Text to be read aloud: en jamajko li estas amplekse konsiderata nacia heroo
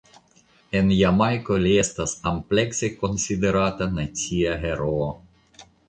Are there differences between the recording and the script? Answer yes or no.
no